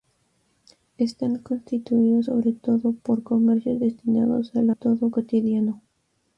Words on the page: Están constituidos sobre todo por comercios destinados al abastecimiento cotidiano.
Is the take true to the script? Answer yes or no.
no